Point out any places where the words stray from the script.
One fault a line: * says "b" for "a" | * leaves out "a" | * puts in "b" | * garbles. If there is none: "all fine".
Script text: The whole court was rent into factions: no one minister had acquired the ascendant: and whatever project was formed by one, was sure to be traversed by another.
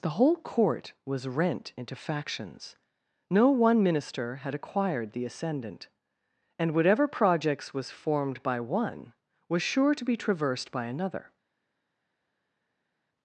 * says "projects" for "project"